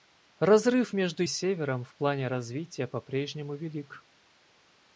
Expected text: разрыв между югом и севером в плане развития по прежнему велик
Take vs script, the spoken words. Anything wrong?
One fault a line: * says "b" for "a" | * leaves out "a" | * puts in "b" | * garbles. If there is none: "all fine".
* leaves out "югом"